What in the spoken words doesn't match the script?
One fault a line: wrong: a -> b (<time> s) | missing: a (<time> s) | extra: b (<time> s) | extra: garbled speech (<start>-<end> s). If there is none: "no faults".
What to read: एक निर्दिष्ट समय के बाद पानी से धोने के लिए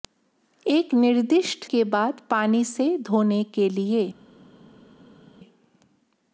missing: समय (1.6 s)